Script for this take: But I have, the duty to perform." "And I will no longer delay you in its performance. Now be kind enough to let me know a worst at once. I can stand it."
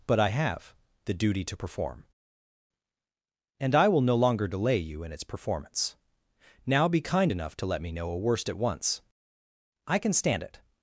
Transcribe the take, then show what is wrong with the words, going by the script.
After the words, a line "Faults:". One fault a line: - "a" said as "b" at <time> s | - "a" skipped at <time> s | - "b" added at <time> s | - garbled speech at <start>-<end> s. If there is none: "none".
But I have, the duty to perform." "And I will no longer delay you in its performance. Now be kind enough to let me know a worst at once. I can stand it."
Faults:
none